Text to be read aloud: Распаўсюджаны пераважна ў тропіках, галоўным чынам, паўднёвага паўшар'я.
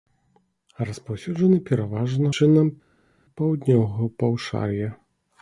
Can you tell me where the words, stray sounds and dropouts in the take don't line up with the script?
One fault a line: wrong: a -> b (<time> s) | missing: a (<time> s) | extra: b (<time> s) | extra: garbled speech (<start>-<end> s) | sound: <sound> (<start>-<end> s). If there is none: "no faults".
missing: ў тропіках галоўным (2.3 s)